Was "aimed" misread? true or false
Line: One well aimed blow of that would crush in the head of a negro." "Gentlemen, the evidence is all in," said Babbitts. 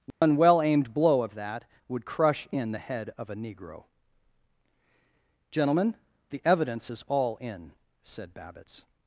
false